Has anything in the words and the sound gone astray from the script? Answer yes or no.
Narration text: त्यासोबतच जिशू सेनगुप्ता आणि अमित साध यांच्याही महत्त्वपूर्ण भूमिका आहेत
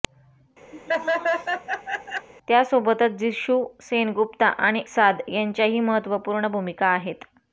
yes